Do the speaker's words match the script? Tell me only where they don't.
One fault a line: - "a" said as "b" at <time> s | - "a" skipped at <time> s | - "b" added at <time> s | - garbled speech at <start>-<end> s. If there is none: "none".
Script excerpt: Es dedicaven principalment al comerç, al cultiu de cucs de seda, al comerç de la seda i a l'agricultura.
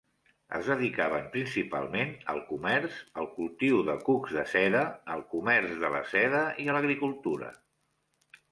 none